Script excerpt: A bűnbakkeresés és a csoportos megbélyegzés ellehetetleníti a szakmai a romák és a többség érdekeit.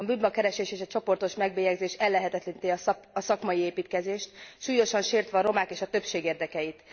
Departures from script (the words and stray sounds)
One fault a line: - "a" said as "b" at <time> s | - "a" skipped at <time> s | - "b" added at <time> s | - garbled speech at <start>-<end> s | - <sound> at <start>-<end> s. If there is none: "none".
- "építkezést súlyosan sértve" added at 3.6 s